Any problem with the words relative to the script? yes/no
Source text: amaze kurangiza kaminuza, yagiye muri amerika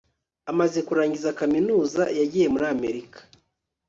no